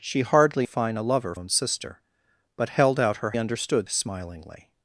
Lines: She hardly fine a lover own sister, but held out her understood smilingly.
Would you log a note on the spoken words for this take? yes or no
no